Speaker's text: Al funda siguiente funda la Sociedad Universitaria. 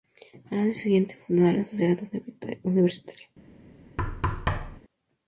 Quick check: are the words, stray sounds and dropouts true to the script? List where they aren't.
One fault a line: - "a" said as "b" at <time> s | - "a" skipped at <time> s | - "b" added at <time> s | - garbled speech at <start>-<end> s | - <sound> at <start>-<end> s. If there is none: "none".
- "funda" said as "año" at 0.6 s
- thud at 4.0-4.8 s